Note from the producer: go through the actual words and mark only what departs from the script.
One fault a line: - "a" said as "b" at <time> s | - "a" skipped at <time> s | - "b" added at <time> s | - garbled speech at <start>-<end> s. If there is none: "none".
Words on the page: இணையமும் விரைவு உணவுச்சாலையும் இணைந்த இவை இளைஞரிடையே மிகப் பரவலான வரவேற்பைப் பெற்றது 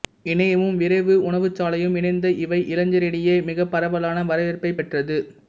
none